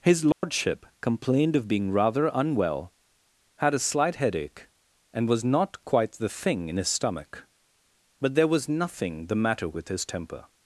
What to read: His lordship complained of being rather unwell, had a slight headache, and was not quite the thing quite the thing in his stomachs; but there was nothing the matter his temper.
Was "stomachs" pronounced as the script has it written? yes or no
no